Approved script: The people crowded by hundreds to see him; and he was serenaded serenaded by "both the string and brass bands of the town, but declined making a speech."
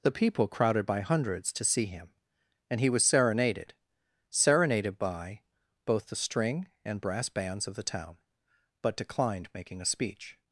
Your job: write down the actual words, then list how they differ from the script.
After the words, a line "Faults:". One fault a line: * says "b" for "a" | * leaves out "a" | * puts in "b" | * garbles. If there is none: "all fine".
The people crowded by hundreds to see him; and he was serenaded serenaded by "both the string and brass bands of the town, but declined making a speech."
Faults:
all fine